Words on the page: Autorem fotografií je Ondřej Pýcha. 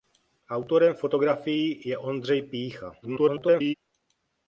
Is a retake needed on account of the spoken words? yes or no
yes